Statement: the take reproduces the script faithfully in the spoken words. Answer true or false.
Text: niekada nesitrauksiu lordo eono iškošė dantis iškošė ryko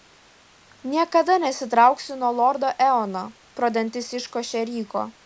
false